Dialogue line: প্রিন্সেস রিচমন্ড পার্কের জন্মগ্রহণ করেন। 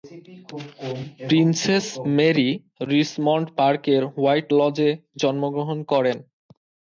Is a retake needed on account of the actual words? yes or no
yes